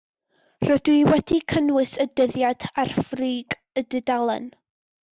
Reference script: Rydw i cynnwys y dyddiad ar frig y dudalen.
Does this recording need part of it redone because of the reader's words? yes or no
yes